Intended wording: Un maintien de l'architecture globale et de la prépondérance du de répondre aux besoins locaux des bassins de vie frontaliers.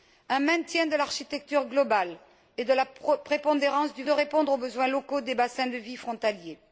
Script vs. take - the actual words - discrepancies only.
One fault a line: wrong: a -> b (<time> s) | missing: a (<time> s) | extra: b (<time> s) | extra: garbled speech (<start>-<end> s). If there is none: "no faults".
no faults